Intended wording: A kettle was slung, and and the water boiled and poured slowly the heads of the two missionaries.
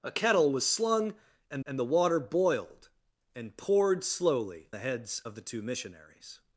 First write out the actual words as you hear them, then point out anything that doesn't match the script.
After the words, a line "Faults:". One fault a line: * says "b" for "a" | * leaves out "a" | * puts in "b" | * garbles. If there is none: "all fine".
A kettle was slung, and and the water boiled and poured slowly the heads of the two missionaries.
Faults:
all fine